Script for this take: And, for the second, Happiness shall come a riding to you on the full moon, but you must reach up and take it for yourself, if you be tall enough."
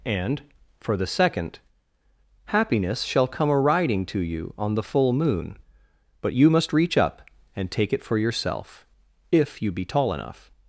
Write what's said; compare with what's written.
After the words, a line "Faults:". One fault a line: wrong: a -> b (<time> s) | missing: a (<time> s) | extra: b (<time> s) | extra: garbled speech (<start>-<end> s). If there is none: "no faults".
And, for the second, Happiness shall come a riding to you on the full moon, but you must reach up and take it for yourself, if you be tall enough."
Faults:
no faults